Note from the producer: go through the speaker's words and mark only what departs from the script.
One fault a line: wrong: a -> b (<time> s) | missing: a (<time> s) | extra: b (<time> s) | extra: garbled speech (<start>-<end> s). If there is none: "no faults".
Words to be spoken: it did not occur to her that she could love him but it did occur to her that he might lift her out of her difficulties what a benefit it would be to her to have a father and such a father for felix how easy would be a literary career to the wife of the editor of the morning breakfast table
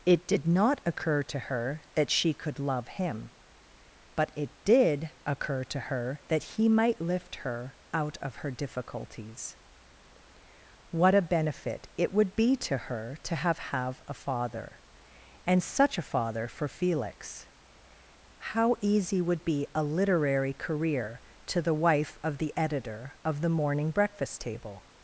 extra: have (13.6 s)